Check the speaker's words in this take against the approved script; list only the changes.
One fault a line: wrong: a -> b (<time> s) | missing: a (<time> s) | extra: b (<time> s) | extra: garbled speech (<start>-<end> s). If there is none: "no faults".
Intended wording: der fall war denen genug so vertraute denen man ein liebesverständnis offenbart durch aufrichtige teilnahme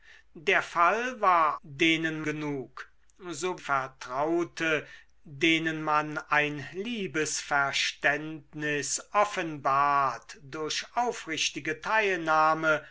no faults